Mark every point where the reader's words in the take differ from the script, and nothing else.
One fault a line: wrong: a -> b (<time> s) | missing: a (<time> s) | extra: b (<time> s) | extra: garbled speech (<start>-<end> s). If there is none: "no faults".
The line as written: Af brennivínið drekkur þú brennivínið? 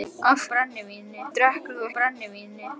no faults